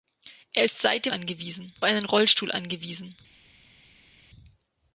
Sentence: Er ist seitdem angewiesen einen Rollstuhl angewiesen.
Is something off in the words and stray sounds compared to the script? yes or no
no